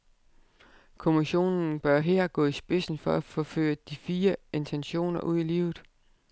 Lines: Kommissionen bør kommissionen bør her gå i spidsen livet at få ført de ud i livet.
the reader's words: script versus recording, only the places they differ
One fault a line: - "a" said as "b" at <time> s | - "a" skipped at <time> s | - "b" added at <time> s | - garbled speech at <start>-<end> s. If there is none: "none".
- "kommissionen bør" skipped at 2.0 s
- "livet" said as "for" at 3.0 s
- "fine intentioner" added at 4.0 s